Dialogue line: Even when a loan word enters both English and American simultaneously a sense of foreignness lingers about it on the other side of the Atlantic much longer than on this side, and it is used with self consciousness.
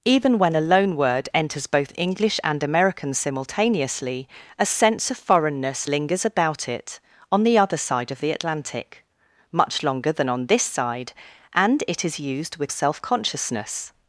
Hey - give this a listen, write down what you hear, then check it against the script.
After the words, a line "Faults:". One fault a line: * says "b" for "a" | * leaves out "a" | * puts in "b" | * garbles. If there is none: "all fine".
Even when a loan word enters both English and American simultaneously a sense of foreignness lingers about it on the other side of the Atlantic much longer than on this side, and it is used with self consciousness.
Faults:
all fine